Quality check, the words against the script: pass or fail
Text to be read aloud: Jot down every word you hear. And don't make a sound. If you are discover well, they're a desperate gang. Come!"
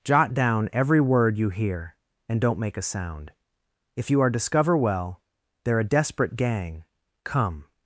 pass